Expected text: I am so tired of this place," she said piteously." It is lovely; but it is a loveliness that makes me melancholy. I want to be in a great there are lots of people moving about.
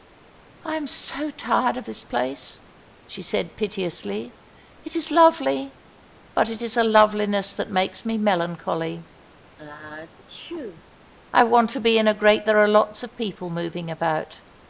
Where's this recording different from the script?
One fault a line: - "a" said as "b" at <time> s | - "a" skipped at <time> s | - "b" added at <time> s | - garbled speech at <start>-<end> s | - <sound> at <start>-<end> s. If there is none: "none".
- sneeze at 9.6-10.9 s